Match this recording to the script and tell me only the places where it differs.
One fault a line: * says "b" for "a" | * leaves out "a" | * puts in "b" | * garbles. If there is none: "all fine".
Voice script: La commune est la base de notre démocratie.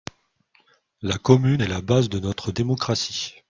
all fine